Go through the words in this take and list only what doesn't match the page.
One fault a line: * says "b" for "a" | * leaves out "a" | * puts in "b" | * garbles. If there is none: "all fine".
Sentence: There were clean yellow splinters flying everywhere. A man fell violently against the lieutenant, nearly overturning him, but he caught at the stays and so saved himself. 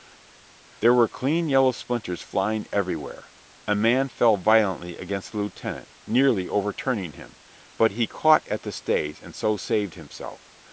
all fine